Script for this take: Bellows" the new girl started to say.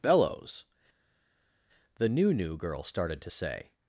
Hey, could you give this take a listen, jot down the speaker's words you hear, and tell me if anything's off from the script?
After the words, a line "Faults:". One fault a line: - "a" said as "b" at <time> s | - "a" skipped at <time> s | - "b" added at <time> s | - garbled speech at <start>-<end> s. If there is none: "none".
Bellows" the new new girl started to say.
Faults:
- "new" added at 2.3 s